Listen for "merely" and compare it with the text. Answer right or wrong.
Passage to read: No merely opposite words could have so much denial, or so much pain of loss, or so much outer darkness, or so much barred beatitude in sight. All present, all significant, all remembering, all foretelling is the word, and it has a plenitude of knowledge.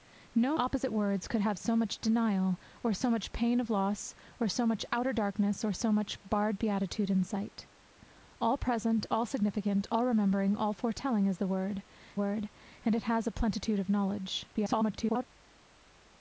wrong